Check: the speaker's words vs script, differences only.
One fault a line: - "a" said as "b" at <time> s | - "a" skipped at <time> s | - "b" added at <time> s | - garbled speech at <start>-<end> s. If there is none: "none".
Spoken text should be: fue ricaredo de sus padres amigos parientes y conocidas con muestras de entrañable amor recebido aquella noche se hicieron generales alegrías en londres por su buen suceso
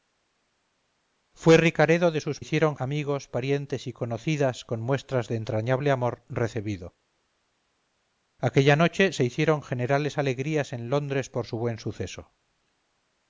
- "padres" said as "hicieron" at 2.4 s